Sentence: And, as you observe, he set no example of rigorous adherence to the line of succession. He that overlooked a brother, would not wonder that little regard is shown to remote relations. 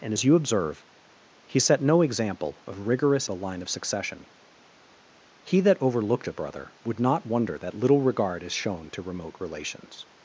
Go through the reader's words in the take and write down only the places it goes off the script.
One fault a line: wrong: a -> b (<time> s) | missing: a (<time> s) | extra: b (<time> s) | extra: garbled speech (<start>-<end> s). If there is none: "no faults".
missing: adherence to (3.3 s)